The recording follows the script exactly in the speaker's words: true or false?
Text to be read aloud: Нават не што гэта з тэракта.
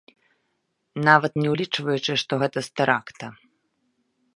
false